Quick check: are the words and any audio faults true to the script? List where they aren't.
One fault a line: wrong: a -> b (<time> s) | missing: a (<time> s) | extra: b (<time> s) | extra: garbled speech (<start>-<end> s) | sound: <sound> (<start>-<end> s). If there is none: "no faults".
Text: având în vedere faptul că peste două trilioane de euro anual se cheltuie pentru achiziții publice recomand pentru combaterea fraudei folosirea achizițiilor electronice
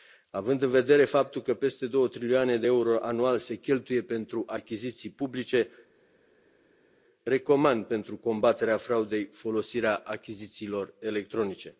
no faults